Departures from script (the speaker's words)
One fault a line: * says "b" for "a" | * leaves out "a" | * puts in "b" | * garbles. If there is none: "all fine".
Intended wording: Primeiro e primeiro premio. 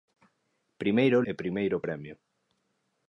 all fine